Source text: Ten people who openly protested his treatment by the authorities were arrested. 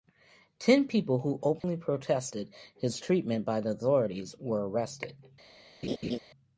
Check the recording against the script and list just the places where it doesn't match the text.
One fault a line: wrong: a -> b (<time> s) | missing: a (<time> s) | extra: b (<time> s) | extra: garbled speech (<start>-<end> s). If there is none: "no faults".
no faults